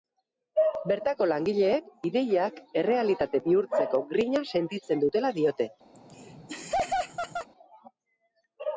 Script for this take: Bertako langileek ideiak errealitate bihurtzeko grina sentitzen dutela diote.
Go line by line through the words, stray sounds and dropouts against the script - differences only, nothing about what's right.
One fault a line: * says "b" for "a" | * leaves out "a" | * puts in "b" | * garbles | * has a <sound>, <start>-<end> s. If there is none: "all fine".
* has a laugh, 5.9-7.5 s